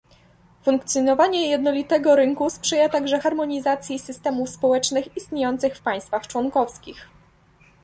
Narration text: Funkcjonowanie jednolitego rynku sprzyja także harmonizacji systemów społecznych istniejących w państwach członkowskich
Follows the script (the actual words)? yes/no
yes